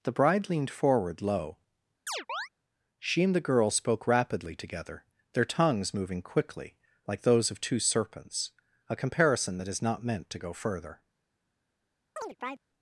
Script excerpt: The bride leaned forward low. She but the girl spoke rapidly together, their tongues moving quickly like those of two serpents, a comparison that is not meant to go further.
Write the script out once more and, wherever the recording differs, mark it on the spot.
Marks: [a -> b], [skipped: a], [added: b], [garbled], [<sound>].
The bride leaned forward low. [chirp] She [but -> and] the girl spoke rapidly together, their tongues moving quickly like those of two serpents, a comparison that is not meant to go further. [chirp]